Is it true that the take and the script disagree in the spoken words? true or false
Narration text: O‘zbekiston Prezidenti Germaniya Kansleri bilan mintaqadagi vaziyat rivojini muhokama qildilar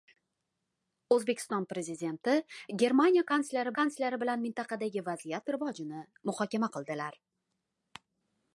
true